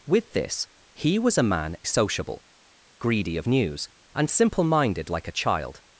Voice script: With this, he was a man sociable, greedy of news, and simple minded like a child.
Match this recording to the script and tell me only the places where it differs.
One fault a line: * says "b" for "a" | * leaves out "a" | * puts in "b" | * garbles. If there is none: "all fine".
all fine